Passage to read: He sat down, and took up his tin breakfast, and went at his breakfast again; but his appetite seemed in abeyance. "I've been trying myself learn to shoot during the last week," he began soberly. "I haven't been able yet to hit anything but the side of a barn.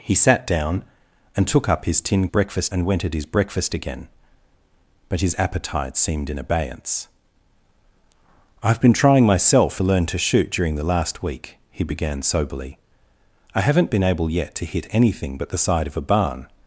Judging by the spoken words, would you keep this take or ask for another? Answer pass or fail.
pass